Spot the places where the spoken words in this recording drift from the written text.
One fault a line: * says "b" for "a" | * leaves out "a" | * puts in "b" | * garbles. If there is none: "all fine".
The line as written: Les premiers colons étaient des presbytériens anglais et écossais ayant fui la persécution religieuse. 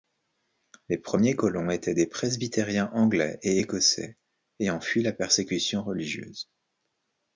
all fine